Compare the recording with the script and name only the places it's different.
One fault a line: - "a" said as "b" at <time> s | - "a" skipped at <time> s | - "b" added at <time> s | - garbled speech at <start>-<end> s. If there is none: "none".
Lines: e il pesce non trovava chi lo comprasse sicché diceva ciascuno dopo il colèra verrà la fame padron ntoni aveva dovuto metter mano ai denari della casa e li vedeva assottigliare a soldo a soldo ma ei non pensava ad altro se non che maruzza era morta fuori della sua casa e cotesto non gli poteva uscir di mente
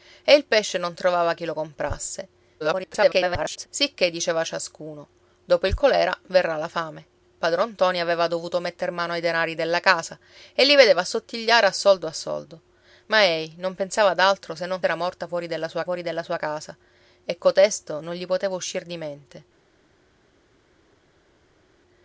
- garbled speech at 2.6-3.7 s
- "che maruzza era morta" said as "era morta fuori della sua" at 14.8 s